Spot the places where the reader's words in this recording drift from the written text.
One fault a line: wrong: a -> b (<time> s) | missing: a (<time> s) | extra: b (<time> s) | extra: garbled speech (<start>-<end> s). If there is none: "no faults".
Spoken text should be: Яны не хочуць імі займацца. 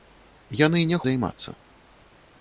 missing: хочуць імі (1.0 s)